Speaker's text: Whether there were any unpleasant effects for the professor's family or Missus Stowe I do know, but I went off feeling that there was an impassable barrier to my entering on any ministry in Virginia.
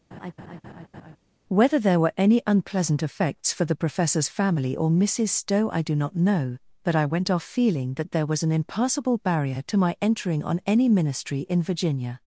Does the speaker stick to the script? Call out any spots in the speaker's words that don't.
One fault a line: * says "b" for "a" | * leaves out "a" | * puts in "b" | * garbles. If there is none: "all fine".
* puts in "not"